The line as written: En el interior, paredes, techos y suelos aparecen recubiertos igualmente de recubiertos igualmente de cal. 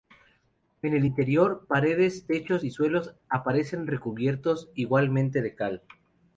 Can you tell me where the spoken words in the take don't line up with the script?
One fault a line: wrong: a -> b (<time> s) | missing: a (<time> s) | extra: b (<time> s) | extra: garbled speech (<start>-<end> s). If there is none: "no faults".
missing: recubiertos igualmente de (5.5 s)